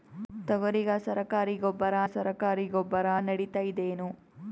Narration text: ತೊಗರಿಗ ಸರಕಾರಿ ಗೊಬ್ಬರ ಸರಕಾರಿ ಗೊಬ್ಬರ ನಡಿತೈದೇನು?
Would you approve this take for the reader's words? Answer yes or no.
yes